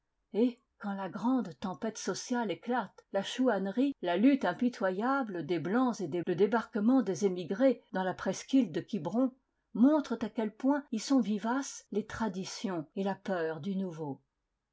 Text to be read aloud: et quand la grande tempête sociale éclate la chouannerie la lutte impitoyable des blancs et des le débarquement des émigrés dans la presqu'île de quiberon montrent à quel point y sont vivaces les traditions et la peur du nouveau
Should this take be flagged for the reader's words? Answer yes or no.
no